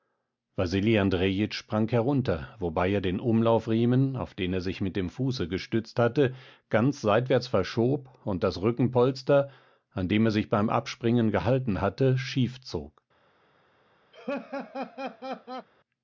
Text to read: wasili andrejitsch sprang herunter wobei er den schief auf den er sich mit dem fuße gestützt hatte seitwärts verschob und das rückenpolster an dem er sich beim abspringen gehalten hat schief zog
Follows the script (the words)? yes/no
no